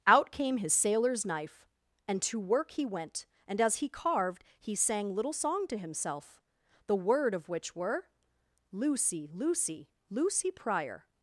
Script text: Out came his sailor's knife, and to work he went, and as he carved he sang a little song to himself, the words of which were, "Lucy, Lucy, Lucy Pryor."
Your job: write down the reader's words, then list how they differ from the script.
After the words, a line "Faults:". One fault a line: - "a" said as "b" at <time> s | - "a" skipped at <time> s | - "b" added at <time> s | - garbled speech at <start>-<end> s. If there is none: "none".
Out came his sailor's knife, and to work he went, and as he carved he sang little song to himself, the word of which were, "Lucy, Lucy, Lucy Pryor."
Faults:
- "a" skipped at 5.1 s
- "words" said as "word" at 7.0 s